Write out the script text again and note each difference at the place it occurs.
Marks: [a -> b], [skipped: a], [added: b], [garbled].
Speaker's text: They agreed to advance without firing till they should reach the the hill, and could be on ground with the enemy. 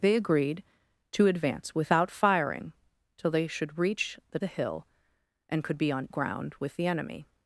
They agreed to advance without firing till they should reach the the hill, and could be on ground with the enemy.